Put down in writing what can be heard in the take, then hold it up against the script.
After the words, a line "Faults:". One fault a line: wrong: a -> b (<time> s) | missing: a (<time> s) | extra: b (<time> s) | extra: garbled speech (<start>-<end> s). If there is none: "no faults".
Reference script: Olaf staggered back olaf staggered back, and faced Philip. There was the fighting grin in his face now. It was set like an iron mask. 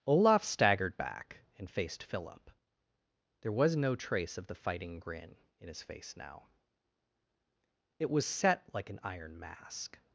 Olaf staggered back, and faced Philip. There was no trace of the fighting grin in his face now. It was set like an iron mask.
Faults:
missing: olaf staggered back (1.4 s)
extra: no trace of (3.8 s)